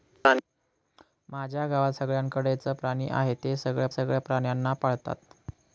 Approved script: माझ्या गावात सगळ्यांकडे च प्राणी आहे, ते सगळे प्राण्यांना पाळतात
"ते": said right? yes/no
yes